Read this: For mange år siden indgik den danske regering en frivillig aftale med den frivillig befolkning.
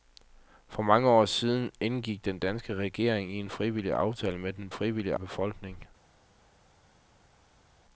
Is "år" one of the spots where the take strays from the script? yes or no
no